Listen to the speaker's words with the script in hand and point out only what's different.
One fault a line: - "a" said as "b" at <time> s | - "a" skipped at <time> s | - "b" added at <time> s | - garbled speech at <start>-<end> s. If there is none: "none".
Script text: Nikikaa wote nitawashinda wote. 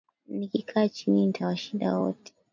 - "wote" said as "chini" at 0.9 s